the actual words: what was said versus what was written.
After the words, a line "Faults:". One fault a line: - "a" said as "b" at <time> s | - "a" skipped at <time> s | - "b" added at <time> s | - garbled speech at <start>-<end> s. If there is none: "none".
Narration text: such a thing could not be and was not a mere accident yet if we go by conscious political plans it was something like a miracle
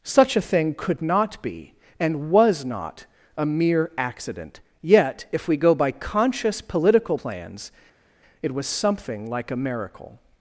such a thing could not be and was not a mere accident yet if we go by conscious political plans it was something like a miracle
Faults:
none